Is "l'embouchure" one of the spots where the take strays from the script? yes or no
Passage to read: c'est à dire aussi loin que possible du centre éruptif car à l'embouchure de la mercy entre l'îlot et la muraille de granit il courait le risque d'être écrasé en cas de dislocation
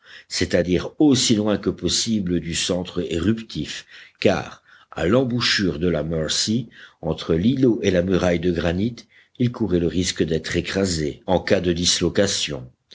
no